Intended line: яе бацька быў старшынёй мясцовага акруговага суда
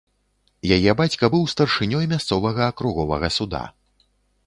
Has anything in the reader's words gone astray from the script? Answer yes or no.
no